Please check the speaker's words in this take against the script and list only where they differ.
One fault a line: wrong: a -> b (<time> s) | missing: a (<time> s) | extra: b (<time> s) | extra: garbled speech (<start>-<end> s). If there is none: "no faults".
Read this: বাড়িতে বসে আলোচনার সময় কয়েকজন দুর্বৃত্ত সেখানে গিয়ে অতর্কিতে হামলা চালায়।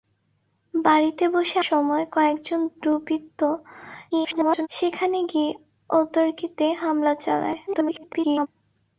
missing: আলোচনার (1.6 s)
extra: garbled speech (4.1-4.7 s)
extra: garbled speech (7.7-8.5 s)